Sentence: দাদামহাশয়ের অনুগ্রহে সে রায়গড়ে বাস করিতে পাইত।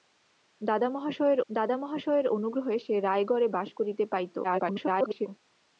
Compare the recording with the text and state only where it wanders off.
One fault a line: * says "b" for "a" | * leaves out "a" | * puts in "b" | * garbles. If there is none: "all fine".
* puts in "দাদামহাশয়ের"
* garbles